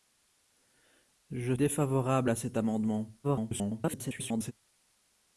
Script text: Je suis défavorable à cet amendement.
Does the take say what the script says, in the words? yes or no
no